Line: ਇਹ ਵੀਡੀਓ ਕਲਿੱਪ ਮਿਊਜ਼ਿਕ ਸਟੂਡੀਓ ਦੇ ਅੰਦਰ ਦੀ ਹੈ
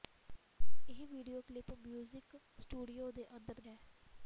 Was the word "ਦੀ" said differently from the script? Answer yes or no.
yes